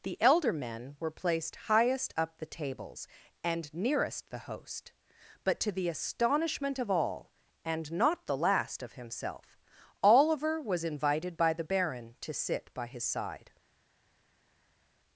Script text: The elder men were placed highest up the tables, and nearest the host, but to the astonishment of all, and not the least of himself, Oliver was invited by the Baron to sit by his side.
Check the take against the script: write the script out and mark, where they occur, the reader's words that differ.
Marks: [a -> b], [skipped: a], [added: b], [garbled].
The elder men were placed highest up the tables, and nearest the host, but to the astonishment of all, and not the [least -> last] of himself, Oliver was invited by the Baron to sit by his side.